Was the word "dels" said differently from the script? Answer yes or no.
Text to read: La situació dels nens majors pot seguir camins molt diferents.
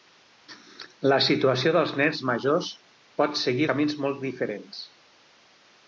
no